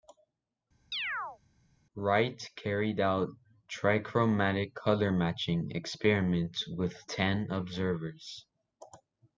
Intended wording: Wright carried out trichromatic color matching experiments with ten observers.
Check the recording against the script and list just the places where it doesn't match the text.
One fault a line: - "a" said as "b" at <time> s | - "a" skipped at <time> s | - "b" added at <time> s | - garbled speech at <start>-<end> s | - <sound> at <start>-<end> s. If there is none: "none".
- chirp at 0.9-1.4 s